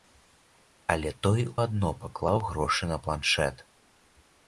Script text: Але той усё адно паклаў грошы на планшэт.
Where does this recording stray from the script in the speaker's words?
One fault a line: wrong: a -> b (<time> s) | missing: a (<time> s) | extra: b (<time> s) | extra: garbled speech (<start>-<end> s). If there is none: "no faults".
missing: усё (1.4 s)